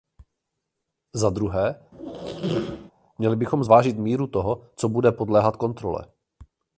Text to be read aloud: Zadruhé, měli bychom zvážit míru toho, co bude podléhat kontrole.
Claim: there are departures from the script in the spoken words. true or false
false